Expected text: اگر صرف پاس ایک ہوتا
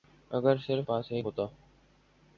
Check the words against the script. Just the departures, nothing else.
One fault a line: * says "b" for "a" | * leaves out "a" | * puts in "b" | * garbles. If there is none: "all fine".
all fine